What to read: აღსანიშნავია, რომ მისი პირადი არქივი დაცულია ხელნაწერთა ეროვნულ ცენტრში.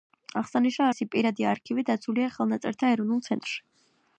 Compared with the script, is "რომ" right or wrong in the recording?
wrong